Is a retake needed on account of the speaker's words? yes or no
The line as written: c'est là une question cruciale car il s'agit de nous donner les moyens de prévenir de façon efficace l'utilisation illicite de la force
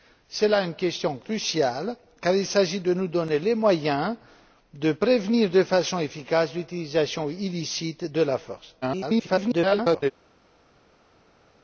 yes